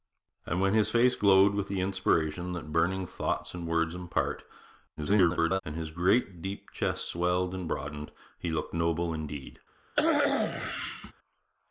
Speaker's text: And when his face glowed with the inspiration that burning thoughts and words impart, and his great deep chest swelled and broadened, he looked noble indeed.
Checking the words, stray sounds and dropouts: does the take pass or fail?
fail